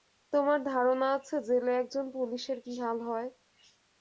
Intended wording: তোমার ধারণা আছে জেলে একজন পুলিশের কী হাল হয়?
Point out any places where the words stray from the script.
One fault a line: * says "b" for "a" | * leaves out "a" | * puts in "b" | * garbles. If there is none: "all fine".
all fine